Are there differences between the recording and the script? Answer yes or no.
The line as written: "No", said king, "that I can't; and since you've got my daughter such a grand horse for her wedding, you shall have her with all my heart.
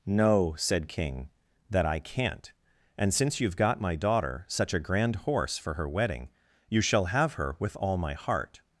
no